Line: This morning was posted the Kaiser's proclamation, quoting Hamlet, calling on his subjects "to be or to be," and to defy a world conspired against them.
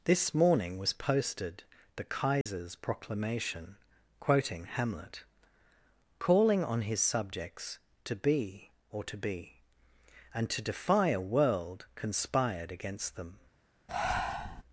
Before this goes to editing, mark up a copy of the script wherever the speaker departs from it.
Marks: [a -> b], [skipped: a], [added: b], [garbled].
This morning was posted the Kaiser's proclamation, quoting Hamlet, calling on his subjects "to be or to be," and to defy a world conspired against them.